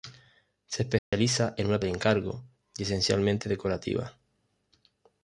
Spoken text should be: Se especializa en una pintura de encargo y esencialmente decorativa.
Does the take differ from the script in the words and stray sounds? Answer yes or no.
yes